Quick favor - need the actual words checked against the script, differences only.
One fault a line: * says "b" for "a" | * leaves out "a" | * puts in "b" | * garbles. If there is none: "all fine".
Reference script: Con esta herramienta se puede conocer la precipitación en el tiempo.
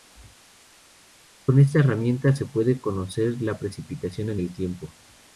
all fine